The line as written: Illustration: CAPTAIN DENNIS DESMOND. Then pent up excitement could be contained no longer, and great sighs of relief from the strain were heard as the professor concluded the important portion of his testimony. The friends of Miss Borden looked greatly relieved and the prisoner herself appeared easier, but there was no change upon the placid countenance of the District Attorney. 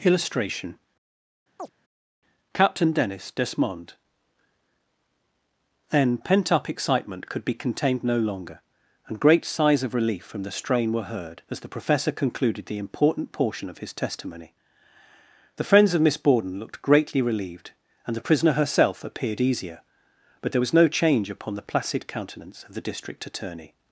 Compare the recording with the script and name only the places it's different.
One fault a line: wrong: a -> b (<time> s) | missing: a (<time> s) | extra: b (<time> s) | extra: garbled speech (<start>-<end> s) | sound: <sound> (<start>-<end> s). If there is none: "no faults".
sound: chirp (1.6-1.7 s)